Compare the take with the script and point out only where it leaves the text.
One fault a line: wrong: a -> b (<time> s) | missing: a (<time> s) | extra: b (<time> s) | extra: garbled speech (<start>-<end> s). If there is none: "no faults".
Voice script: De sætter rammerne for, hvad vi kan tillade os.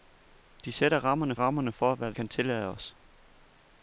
extra: rammerne (1.3 s)
missing: vi (2.1 s)